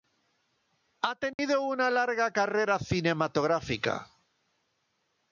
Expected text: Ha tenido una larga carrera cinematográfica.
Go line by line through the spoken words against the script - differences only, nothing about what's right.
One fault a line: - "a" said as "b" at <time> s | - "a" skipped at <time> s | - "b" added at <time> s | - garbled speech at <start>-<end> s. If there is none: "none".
none